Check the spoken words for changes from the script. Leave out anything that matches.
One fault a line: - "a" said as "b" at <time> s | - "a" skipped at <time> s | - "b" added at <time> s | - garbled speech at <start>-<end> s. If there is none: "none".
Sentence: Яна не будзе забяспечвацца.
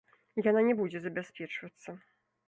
none